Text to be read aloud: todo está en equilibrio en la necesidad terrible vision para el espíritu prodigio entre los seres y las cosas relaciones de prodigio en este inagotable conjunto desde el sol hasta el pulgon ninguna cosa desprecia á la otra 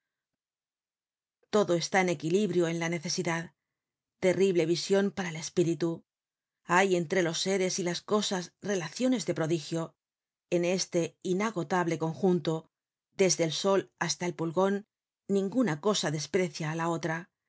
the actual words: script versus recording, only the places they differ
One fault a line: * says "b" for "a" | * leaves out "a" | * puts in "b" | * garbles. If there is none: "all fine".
* says "hay" for "prodigio"